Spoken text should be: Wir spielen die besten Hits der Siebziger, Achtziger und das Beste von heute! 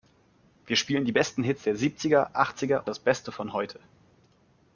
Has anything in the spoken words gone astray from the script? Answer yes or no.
yes